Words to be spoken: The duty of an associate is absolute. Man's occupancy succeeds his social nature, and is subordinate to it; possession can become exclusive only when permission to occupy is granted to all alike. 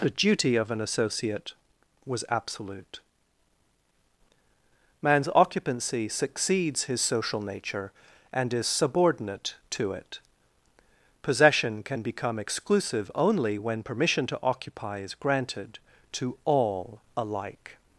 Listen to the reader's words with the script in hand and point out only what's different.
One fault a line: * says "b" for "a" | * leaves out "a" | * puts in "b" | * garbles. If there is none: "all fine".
* says "was" for "is"